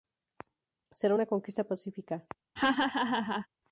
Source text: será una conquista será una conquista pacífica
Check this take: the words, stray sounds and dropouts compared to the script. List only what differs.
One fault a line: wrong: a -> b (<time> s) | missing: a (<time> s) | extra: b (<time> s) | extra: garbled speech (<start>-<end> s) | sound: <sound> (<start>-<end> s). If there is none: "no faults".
missing: será una conquista (1.6 s)
sound: laugh (2.6-3.5 s)